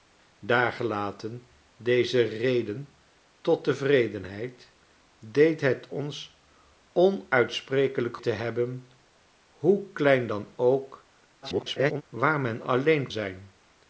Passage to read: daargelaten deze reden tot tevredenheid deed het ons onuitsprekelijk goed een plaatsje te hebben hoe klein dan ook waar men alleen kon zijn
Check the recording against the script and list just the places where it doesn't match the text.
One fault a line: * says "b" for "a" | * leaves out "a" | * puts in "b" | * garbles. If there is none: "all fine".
* leaves out "goed een plaatsje"
* garbles
* leaves out "kon"